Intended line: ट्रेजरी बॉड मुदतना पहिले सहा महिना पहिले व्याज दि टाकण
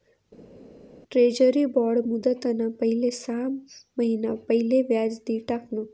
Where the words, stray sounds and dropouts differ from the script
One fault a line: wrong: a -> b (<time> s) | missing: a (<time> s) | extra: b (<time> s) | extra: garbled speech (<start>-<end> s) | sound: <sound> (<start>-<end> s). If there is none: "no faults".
no faults